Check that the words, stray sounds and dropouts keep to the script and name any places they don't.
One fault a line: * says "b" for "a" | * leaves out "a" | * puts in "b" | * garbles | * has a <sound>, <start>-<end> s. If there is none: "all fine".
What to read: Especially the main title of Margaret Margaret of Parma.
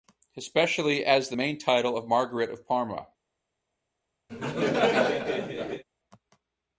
* puts in "as"
* leaves out "Margaret"
* has a laugh, 4.3-5.8 s